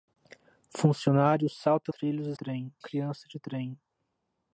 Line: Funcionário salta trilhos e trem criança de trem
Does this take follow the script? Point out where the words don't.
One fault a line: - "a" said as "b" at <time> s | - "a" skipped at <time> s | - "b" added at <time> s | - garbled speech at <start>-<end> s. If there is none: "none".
none